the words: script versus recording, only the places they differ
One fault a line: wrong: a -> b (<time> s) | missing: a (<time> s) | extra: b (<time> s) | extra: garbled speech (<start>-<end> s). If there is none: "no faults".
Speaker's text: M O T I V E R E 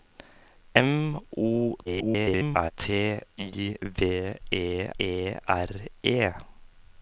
extra: garbled speech (1.9-2.7 s)
extra: E (5.0 s)